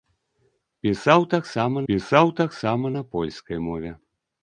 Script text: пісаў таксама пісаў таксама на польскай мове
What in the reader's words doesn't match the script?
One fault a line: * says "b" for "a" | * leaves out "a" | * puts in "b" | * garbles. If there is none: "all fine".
all fine